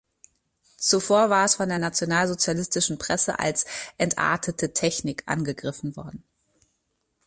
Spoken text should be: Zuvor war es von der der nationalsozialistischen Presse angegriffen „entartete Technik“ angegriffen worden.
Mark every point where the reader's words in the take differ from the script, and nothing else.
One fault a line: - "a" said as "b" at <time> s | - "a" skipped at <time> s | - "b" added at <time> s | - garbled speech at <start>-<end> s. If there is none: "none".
- "der" skipped at 1.8 s
- "angegriffen" said as "als" at 3.4 s